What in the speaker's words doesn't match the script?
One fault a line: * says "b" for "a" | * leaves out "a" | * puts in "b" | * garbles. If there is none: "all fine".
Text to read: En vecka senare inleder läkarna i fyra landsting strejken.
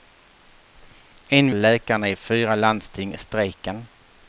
* leaves out "vecka senare inleder"